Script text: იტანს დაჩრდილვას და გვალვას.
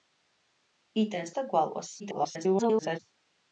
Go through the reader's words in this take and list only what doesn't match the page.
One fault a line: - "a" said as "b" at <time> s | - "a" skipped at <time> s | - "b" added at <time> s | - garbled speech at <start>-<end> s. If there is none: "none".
- "დაჩრდილვას" skipped at 1.3 s
- garbled speech at 2.0-3.0 s